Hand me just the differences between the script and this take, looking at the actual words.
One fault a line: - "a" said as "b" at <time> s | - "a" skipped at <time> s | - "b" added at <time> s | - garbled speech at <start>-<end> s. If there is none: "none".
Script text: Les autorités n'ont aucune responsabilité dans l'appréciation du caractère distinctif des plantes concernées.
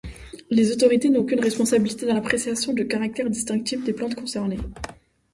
none